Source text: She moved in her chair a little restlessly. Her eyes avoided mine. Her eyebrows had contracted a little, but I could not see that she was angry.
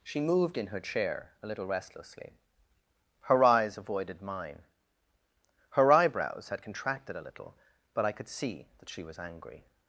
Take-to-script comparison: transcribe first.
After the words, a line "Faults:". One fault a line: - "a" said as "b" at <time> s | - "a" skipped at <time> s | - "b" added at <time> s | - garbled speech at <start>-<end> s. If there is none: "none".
She moved in her chair a little restlessly. Her eyes avoided mine. Her eyebrows had contracted a little, but I could see that she was angry.
Faults:
- "not" skipped at 8.3 s